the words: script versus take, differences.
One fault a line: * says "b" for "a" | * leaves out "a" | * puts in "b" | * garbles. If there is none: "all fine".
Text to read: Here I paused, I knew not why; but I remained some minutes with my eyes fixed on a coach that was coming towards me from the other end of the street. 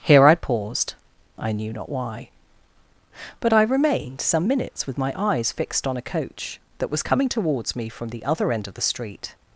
all fine